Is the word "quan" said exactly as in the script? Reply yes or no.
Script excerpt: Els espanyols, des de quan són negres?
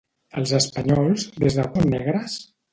no